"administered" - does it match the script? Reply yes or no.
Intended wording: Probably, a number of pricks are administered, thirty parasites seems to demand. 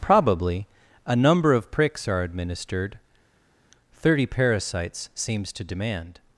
yes